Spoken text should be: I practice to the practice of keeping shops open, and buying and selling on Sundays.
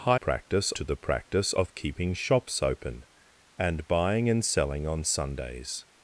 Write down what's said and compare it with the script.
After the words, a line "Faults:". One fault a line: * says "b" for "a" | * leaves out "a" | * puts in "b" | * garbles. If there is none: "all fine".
I practice to the practice of keeping shops open, and buying and selling on Sundays.
Faults:
all fine